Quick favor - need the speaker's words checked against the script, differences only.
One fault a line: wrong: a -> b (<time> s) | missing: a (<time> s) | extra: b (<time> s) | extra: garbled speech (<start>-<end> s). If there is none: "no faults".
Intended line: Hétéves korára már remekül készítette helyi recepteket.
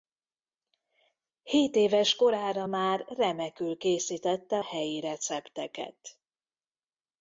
no faults